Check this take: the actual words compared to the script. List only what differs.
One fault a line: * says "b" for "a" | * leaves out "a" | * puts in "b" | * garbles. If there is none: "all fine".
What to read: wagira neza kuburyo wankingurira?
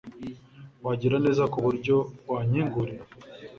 all fine